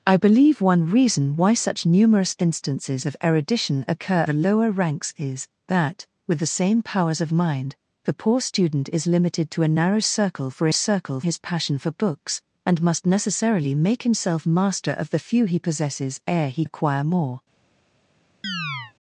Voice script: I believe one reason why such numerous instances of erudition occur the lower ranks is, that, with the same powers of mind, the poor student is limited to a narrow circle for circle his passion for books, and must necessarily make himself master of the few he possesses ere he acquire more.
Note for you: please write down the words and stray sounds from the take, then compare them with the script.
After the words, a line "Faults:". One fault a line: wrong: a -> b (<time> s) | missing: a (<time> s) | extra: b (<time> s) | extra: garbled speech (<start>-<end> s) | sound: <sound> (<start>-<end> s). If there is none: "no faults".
I believe one reason why such numerous instances of erudition occur the lower ranks is, that, with the same powers of mind, the poor student is limited to a narrow circle for circle his passion for books, and must necessarily make himself master of the few he possesses ere he acquire more.
Faults:
sound: chirp (18.4-18.9 s)